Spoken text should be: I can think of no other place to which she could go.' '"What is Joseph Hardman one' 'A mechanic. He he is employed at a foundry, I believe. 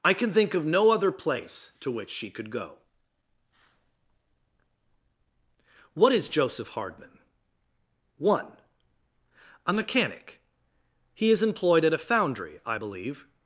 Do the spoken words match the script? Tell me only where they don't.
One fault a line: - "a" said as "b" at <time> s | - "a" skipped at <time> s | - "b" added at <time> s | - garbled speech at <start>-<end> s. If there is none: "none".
- "he" skipped at 11.3 s